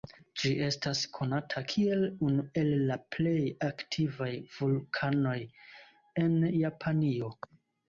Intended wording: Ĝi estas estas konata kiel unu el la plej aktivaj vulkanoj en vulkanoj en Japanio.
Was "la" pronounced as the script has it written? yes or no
yes